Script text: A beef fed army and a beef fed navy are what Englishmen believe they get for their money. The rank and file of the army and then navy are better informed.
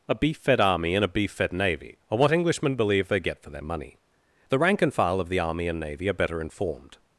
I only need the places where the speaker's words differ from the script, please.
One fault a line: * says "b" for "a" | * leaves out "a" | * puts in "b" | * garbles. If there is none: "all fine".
* leaves out "then"